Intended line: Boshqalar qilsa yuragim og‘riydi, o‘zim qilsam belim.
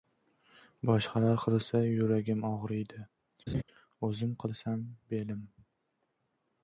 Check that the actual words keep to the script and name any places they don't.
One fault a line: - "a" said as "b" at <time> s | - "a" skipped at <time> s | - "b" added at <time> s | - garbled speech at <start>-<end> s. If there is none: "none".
none